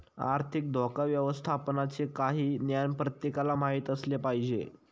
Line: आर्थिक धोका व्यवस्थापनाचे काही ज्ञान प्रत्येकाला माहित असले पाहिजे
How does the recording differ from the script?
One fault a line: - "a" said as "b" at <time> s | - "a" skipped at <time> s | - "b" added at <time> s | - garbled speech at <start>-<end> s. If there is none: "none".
none